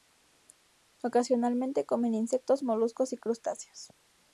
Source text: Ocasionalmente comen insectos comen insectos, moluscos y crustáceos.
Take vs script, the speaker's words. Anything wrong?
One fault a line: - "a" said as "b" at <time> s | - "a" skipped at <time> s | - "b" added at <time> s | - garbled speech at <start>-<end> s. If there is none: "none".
- "comen insectos" skipped at 2.6 s